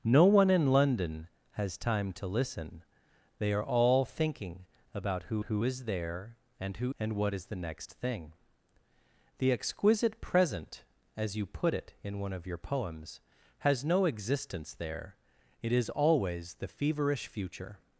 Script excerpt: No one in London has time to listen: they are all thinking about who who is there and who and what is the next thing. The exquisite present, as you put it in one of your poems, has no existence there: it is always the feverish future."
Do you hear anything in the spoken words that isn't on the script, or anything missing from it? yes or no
no